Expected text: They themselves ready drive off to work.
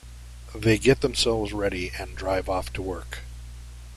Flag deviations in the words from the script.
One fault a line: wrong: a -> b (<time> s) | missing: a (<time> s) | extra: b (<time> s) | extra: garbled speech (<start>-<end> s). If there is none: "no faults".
extra: get (0.8 s)
extra: and (2.0 s)